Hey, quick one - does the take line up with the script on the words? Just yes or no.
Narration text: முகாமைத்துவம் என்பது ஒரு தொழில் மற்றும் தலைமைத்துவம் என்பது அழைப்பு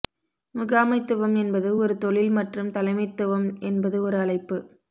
no